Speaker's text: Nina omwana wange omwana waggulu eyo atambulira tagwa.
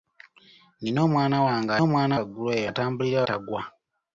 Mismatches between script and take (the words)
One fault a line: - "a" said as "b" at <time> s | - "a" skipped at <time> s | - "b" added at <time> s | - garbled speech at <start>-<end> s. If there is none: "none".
none